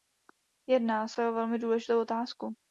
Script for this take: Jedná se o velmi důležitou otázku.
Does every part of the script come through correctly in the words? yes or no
yes